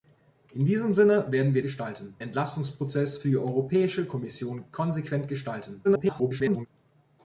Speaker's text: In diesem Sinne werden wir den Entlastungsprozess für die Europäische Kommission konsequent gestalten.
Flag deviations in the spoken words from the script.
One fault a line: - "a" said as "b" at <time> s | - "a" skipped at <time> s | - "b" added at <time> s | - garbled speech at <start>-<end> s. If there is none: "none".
- "den" said as "gestalten" at 1.6 s
- garbled speech at 5.8-6.7 s